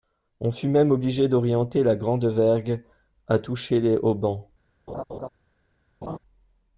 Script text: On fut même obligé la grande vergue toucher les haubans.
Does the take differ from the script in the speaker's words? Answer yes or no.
yes